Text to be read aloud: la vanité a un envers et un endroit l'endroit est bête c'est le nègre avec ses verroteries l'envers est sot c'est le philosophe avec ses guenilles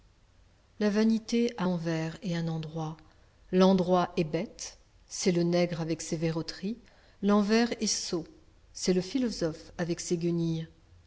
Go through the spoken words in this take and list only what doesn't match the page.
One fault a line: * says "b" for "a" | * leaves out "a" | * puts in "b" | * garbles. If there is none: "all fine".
* leaves out "un"